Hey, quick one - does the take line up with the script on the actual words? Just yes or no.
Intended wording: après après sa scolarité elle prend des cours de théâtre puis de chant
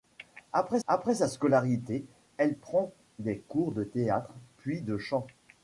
yes